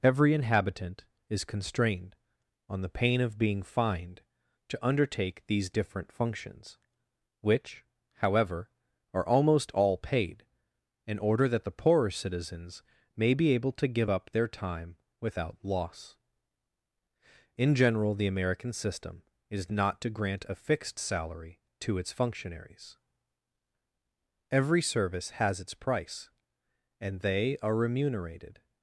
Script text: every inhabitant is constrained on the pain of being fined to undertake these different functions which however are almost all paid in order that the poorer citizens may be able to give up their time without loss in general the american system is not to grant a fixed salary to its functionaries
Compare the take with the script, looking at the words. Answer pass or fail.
fail